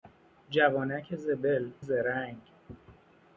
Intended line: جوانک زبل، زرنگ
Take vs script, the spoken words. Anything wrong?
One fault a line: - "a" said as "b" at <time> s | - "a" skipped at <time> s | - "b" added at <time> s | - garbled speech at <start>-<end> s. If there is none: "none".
none